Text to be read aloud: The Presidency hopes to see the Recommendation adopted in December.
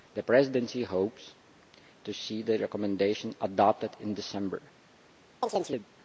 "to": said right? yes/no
yes